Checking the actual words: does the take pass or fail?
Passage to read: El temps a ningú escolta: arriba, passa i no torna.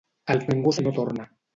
fail